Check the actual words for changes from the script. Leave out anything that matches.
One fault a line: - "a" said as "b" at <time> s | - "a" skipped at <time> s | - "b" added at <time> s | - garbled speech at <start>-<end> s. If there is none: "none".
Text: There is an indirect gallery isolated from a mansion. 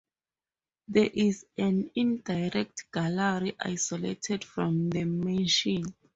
- "a" said as "the" at 4.9 s